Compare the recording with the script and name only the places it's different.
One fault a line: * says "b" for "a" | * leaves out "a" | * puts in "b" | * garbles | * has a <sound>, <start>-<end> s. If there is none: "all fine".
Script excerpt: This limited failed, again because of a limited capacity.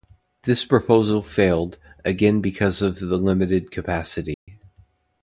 * says "proposal" for "limited"
* says "the" for "a"
* has a dropout, 4.3-4.5 s